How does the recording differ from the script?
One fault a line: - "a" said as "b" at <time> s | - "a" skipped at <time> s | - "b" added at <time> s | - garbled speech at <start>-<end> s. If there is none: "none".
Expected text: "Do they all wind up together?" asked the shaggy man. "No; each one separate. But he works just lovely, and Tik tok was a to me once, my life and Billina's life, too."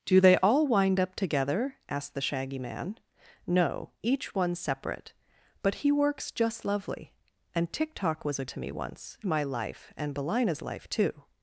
none